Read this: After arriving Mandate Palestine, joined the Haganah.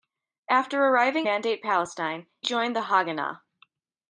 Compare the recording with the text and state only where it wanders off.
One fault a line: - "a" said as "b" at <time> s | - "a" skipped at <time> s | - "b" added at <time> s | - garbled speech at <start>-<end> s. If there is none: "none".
none